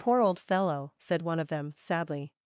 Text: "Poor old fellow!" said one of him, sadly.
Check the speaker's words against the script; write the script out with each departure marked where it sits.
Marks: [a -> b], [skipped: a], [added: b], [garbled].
"Poor old fellow!" said one of [him, -> them] sadly.